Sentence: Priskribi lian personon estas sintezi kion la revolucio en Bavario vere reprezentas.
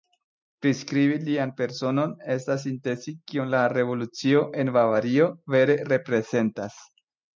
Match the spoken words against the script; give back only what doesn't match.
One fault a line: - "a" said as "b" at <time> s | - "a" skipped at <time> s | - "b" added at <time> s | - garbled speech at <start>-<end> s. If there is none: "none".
none